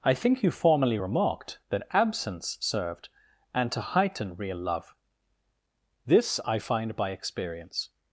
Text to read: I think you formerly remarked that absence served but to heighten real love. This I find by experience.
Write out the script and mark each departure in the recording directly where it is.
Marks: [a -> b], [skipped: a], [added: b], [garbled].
I think you formerly remarked that absence served [but -> and] to heighten real love. This I find by experience.